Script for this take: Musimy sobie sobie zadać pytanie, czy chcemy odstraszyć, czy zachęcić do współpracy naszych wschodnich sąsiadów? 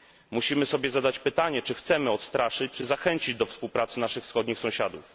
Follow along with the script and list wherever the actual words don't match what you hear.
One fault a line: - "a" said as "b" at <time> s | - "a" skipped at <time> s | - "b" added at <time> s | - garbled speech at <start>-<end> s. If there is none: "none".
- "sobie" skipped at 0.9 s